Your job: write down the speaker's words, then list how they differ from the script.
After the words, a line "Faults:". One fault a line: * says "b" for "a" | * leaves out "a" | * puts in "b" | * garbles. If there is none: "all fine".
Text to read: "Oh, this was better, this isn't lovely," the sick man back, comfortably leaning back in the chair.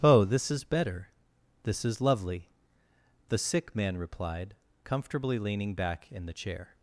"Oh, this is better, this is lovely," the sick man replied, comfortably leaning back in the chair.
Faults:
* says "is" for "was"
* says "is" for "isn't"
* says "replied" for "back"